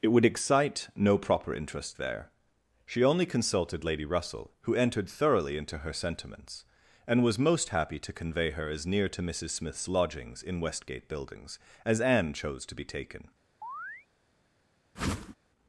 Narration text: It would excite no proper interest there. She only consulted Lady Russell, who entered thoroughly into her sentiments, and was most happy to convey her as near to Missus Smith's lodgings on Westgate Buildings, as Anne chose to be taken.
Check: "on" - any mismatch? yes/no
yes